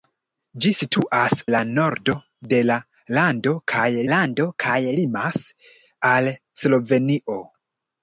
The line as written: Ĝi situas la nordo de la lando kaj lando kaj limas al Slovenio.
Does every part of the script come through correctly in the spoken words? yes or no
yes